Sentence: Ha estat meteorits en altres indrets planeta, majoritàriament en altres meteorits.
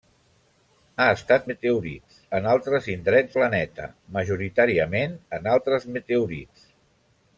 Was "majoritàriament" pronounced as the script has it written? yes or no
yes